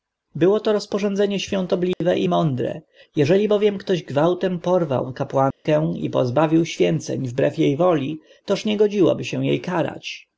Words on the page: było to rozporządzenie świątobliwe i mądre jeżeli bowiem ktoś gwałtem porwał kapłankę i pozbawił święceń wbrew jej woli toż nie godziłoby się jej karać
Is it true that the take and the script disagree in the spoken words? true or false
false